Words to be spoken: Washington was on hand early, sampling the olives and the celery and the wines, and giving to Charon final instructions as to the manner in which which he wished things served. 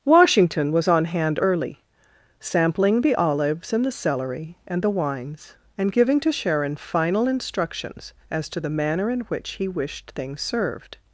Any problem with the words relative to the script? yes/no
yes